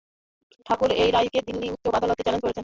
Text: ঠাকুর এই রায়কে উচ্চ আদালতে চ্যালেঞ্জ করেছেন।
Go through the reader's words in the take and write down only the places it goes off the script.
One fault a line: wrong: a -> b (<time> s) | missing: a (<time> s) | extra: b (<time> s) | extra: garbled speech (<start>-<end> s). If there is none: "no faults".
extra: দিল্লি (1.5 s)